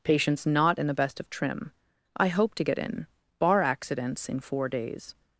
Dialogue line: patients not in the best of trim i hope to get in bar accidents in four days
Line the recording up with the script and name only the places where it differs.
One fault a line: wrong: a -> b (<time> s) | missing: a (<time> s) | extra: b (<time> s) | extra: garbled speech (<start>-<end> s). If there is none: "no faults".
no faults